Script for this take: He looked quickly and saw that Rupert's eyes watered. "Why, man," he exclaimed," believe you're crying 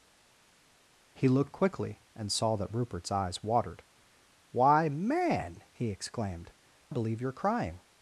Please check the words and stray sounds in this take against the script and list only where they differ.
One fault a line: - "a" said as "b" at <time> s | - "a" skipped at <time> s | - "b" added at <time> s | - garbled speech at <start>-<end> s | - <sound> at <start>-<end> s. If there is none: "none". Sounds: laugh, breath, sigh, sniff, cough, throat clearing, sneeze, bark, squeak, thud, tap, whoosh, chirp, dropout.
none